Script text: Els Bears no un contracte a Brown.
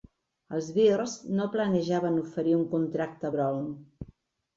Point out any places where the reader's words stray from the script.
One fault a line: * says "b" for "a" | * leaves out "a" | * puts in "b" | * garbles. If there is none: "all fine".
* puts in "planejaven oferir"